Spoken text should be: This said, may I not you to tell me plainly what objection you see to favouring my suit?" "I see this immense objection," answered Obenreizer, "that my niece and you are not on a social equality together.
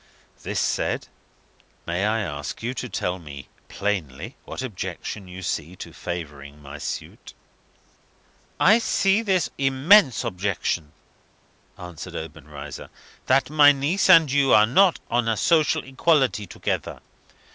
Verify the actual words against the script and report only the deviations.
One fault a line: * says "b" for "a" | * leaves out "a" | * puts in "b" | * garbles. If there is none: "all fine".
* says "ask" for "not"